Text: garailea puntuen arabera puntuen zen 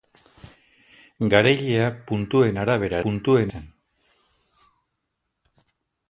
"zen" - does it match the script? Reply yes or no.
yes